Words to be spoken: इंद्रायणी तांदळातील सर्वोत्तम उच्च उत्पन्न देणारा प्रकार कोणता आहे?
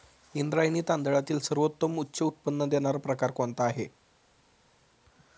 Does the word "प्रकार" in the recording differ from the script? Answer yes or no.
no